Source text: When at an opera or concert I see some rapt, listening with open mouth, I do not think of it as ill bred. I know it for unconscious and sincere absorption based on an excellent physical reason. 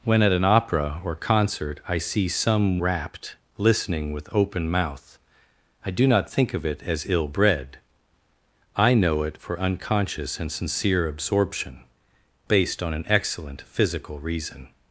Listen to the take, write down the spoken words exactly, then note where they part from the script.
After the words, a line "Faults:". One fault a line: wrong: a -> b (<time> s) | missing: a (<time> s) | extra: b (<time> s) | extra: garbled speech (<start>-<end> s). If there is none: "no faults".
When at an opera or concert I see some rapt, listening with open mouth, I do not think of it as ill bred. I know it for unconscious and sincere absorption based on an excellent physical reason.
Faults:
no faults